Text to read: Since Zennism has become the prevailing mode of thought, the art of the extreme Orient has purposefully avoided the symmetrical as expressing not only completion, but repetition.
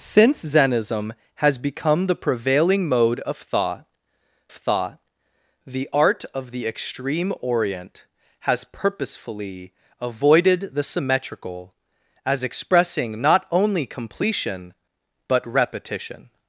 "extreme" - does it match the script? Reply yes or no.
yes